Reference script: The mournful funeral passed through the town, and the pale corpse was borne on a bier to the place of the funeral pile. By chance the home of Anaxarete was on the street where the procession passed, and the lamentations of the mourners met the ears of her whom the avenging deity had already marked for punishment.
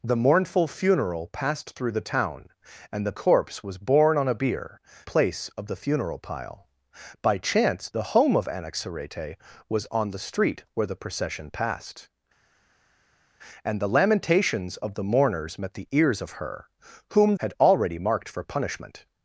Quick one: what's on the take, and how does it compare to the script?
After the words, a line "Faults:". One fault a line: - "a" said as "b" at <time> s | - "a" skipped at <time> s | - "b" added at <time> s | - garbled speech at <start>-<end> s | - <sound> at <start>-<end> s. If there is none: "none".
The mournful funeral passed through the town, and the corpse was borne on a bier place of the funeral pile. By chance the home of Anaxarete was on the street where the procession passed, and the lamentations of the mourners met the ears of her whom had already marked for punishment.
Faults:
- "pale" skipped at 3.1 s
- "to the" skipped at 4.8 s
- "the avenging deity" skipped at 17.4 s